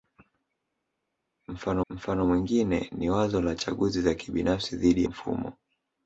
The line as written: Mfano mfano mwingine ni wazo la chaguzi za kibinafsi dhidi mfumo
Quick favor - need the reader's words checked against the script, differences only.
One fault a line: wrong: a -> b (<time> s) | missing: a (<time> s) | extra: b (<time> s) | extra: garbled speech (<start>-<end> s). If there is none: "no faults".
no faults